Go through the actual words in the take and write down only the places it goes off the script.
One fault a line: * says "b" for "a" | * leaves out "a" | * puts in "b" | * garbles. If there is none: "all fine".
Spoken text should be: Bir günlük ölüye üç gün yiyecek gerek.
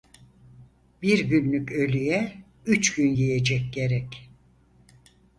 all fine